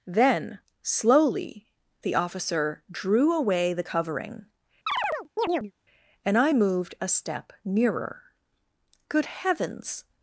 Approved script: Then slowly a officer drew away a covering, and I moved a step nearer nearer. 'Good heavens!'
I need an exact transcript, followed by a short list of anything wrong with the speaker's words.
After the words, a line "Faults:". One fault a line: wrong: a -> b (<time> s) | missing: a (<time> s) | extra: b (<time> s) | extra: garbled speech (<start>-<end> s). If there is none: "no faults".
Then slowly the officer drew away the covering, and I moved a step nearer. 'Good heavens!'
Faults:
wrong: a -> the (2.0 s)
wrong: a -> the (3.7 s)
missing: nearer (8.2 s)